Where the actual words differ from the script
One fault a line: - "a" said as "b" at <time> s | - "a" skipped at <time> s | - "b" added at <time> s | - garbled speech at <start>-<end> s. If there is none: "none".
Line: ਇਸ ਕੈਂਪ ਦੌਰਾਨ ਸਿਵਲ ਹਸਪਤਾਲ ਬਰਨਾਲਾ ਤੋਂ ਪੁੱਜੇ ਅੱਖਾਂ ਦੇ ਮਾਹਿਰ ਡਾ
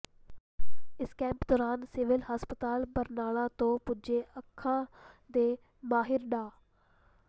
none